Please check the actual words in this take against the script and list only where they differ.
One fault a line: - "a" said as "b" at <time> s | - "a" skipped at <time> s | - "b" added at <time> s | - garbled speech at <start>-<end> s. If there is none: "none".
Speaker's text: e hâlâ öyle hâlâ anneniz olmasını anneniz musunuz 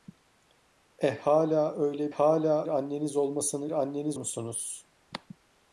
none